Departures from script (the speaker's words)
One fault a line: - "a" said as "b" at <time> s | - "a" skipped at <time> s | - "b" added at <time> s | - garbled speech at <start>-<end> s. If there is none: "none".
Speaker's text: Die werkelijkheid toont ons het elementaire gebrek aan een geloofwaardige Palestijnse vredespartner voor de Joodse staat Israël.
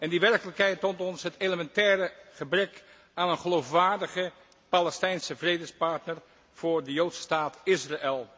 none